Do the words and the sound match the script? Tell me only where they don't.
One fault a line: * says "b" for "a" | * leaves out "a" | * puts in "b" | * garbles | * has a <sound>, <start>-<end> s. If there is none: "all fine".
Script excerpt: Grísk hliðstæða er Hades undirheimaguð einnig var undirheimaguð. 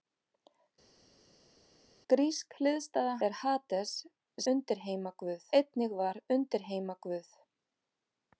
all fine